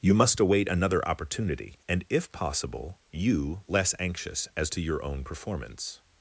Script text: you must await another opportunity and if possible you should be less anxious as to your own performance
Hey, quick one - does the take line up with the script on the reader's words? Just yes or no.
no